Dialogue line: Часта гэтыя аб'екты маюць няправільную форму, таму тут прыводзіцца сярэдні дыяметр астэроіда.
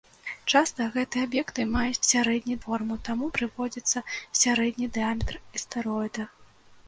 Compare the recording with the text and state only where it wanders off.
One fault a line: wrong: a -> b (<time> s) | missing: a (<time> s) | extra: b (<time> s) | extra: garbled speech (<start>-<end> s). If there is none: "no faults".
wrong: няправільную -> сярэдні (2.1 s)
missing: тут (3.3 s)